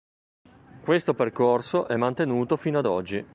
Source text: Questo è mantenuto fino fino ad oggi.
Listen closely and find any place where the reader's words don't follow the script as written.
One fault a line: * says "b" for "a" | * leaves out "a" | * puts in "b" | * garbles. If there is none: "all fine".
* puts in "percorso"
* leaves out "fino"